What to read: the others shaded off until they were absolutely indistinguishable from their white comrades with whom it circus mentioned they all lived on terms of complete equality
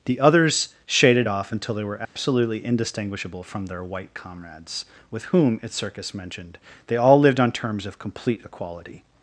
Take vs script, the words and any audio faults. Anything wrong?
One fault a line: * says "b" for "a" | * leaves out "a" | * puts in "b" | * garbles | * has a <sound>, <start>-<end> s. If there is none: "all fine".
* has a dropout, 2.0-2.2 s